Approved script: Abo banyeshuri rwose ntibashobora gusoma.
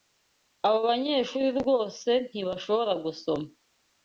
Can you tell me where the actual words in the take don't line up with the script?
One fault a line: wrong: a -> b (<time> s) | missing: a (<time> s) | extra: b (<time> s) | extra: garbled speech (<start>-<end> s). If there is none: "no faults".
no faults